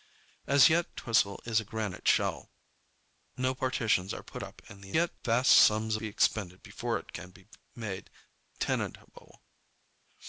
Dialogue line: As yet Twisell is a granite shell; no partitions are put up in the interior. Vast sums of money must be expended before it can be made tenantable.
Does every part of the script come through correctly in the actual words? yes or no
no